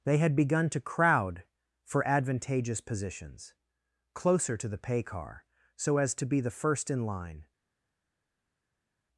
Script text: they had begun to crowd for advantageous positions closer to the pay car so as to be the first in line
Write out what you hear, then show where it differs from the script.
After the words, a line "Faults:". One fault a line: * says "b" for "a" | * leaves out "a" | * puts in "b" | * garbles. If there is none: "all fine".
they had begun to crowd for advantageous positions closer to the pay car so as to be the first in line
Faults:
all fine